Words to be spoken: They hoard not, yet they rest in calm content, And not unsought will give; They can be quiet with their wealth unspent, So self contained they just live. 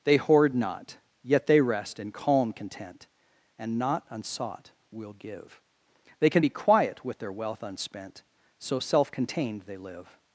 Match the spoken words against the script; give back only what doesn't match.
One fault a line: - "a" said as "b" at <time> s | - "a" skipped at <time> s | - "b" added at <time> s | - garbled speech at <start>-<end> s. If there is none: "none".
- "just" skipped at 9.8 s